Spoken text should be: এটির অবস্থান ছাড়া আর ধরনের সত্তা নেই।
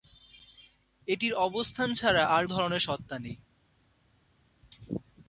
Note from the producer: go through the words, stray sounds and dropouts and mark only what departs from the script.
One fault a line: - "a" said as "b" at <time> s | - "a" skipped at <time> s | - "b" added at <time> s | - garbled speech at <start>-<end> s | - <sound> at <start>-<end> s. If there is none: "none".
none